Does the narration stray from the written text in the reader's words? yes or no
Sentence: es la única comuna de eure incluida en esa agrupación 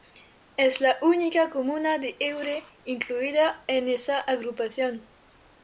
no